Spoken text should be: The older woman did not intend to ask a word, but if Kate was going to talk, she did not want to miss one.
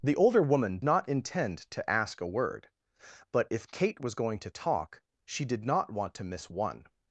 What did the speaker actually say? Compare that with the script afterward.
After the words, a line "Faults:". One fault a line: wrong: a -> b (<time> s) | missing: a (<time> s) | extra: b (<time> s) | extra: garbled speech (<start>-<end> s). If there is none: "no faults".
The older woman not intend to ask a word, but if Kate was going to talk, she did not want to miss one.
Faults:
missing: did (0.8 s)